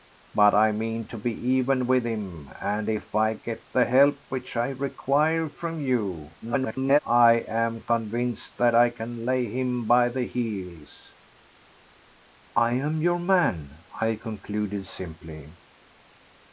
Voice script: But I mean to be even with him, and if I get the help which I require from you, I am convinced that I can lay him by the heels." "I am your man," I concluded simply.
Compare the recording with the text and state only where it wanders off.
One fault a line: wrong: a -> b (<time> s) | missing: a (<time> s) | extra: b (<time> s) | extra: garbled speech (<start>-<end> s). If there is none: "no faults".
extra: garbled speech (6.4-7.0 s)